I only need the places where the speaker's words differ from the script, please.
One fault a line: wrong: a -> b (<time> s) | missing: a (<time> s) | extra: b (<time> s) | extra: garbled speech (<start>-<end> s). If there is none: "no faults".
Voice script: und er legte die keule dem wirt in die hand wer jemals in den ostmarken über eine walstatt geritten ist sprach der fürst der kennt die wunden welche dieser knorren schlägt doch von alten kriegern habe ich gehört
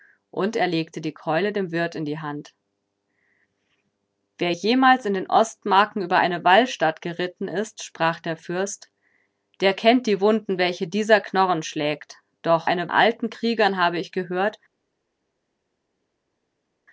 wrong: von -> eine (12.6 s)